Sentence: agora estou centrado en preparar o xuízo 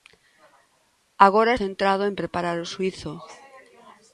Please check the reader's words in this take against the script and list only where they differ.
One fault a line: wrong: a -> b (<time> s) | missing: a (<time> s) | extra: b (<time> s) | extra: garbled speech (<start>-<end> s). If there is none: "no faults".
missing: estou (1.5 s)